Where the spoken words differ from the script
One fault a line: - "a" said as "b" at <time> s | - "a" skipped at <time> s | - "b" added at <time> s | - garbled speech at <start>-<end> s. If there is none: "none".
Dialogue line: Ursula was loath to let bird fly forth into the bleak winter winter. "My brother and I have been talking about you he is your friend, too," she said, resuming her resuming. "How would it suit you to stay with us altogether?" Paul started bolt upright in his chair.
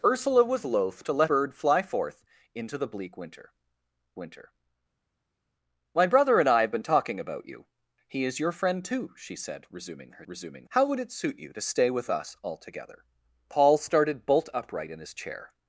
none